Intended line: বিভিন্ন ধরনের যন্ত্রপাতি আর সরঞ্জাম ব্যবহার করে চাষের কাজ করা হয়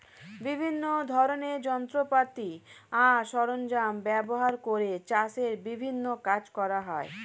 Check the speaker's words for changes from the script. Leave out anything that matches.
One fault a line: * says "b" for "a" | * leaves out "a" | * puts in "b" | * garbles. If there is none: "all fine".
* puts in "বিভিন্ন"